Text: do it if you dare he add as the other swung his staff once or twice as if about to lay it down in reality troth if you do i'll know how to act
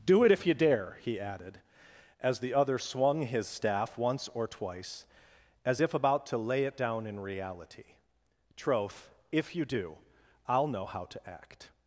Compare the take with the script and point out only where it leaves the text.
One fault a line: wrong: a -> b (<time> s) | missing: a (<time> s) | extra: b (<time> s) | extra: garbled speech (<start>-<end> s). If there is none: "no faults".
wrong: add -> added (1.2 s)